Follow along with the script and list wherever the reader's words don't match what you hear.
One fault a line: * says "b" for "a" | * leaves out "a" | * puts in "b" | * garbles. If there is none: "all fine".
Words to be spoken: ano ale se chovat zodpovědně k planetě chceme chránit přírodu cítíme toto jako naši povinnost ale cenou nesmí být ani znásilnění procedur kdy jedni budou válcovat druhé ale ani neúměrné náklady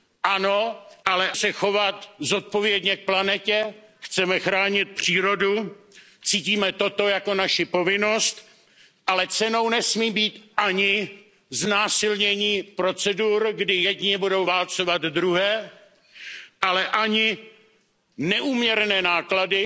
all fine